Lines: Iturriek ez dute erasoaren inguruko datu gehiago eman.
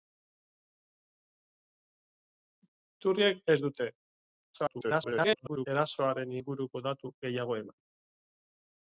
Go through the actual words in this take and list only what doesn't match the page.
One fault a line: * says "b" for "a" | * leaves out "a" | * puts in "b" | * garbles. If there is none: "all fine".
* garbles